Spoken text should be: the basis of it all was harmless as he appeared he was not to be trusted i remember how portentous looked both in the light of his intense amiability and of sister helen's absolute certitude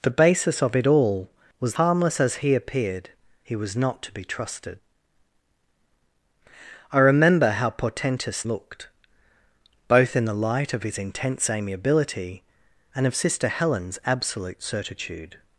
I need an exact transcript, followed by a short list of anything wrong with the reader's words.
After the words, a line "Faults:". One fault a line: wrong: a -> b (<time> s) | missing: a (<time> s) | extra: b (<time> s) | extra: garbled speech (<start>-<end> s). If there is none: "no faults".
the basis of it all was harmless as he appeared he was not to be trusted i remember how portentous looked both in the light of his intense amiability and of sister helen's absolute certitude
Faults:
no faults